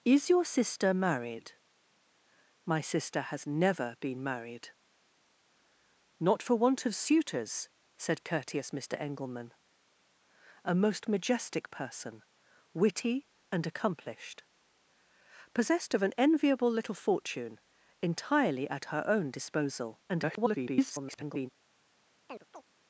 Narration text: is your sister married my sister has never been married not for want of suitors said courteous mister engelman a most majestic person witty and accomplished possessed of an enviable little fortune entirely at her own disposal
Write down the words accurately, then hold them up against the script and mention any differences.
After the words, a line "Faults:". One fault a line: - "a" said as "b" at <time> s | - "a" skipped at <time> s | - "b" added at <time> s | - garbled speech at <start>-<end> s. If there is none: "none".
is your sister married my sister has never been married not for want of suitors said courteous mister engelman a most majestic person witty and accomplished possessed of an enviable little fortune entirely at her own disposal [garbled]
Faults:
- garbled speech at 20.1-21.5 s